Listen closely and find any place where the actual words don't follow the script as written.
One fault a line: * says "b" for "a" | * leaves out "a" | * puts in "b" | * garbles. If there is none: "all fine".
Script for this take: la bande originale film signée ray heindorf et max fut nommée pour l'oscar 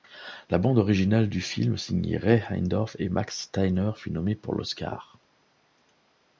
* puts in "du"
* puts in "steiner"